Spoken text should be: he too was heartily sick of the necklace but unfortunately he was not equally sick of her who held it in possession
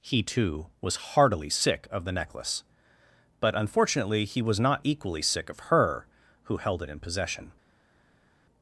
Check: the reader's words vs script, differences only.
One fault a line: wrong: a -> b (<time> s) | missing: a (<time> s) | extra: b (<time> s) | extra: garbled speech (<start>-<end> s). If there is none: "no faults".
no faults